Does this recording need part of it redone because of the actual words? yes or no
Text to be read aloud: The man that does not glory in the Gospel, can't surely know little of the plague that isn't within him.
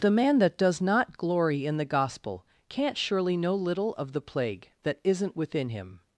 no